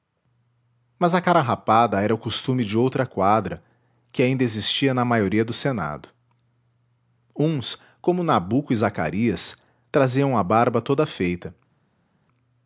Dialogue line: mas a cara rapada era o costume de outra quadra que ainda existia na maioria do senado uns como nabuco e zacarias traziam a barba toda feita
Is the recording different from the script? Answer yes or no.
no